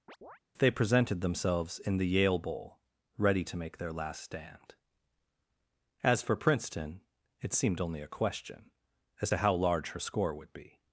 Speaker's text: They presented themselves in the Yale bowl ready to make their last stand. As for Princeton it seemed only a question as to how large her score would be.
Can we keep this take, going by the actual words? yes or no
yes